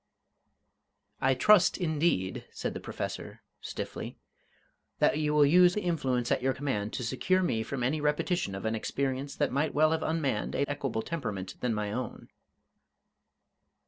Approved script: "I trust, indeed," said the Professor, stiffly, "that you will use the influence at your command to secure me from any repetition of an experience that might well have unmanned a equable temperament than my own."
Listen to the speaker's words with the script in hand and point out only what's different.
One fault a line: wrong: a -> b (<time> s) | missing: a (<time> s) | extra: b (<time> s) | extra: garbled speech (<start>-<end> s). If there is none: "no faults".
no faults